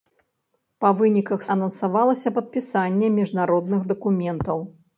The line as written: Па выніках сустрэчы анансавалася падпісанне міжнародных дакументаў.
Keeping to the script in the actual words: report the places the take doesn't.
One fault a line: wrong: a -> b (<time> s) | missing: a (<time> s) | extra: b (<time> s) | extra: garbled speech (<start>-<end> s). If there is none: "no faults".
missing: сустрэчы (1.4 s)